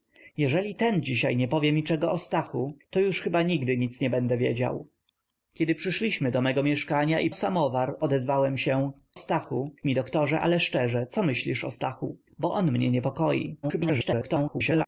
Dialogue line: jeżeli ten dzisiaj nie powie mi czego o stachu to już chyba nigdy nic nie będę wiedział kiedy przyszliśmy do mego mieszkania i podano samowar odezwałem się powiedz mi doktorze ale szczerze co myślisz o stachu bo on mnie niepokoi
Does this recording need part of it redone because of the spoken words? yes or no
yes